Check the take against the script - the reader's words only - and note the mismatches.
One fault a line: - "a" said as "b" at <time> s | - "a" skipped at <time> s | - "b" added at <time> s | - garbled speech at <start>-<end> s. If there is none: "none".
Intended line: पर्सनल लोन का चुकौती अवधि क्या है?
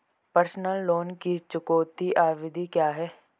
- "का" said as "की" at 1.1 s